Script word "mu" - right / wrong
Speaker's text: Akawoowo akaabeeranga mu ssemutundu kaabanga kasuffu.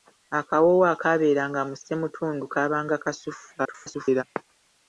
right